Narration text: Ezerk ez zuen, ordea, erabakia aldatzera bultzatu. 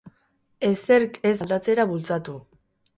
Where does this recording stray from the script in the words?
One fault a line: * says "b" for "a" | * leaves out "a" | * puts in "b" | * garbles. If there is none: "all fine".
* leaves out "zuen ordea erabakia"